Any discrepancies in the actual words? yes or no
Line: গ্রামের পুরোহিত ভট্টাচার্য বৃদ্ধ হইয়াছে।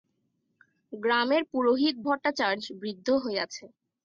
no